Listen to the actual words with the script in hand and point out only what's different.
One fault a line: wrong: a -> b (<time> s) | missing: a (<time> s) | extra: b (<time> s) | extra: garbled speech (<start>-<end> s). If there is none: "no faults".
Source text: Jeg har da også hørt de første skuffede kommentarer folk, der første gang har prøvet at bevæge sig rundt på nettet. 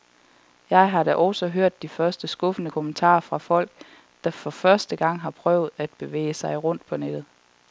extra: fra (3.2 s)
extra: for (4.3 s)